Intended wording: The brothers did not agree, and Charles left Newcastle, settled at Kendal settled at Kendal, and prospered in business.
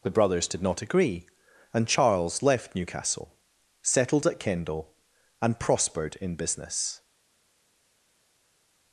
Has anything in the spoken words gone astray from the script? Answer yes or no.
yes